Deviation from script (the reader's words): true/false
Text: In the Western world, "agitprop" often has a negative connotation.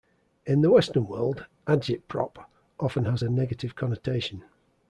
false